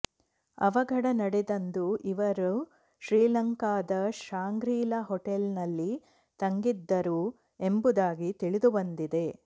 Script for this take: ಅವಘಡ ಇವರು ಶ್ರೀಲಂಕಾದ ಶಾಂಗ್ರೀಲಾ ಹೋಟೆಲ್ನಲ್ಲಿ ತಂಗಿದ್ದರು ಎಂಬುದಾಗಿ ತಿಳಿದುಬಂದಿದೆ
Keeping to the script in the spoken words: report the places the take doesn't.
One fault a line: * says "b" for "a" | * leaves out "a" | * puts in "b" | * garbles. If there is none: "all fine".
* puts in "ನಡೆದಂದು"